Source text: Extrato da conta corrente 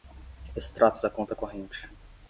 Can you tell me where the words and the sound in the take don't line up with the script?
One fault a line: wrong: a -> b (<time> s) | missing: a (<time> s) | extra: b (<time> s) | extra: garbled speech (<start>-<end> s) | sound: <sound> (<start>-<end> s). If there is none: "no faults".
no faults